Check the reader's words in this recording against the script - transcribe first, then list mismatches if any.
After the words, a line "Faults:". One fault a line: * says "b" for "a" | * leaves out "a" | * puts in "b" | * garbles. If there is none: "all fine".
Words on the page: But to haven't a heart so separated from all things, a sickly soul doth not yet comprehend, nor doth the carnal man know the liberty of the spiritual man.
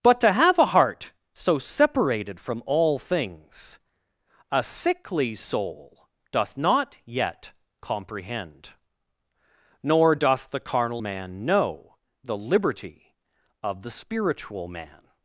But to have a heart so separated from all things, a sickly soul doth not yet comprehend, nor doth the carnal man know the liberty of the spiritual man.
Faults:
* says "have" for "haven't"